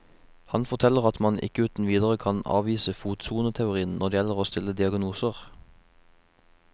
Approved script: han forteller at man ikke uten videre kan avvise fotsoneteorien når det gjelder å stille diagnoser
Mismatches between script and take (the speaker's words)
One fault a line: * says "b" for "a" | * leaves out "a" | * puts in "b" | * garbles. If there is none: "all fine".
all fine